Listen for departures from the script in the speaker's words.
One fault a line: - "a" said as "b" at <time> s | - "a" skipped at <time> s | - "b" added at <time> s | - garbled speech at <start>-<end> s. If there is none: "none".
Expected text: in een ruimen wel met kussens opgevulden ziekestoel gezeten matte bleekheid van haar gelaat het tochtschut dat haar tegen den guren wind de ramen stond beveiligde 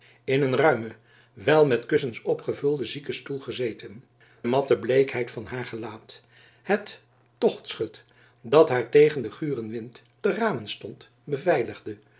none